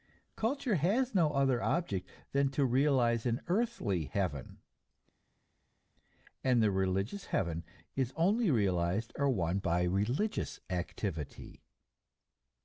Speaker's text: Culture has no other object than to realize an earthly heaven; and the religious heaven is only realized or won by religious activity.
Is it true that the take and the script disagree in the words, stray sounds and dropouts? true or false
false